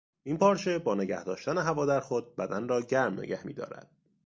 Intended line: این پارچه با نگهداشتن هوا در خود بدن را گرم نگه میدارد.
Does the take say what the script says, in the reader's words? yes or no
yes